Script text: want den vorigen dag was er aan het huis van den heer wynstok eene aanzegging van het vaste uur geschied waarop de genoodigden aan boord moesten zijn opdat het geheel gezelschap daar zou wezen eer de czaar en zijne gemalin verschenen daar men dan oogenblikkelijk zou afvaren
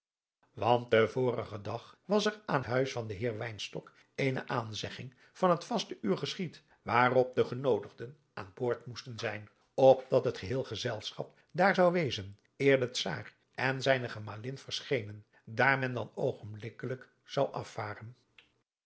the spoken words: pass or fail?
fail